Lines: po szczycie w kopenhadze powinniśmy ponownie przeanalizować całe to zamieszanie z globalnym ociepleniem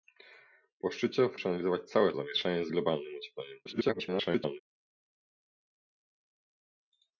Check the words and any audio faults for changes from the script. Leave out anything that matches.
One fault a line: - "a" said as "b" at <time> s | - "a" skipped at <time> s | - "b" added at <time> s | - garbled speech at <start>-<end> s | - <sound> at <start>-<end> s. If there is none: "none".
- "kopenhadze powinniśmy ponownie" skipped at 1.4 s
- "to" skipped at 2.1 s
- garbled speech at 3.7-4.6 s